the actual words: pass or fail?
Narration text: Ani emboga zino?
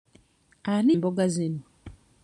pass